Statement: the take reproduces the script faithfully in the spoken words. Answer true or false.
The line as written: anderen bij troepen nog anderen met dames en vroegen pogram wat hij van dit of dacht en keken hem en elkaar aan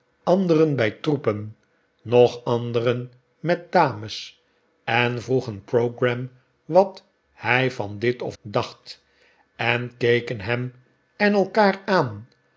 true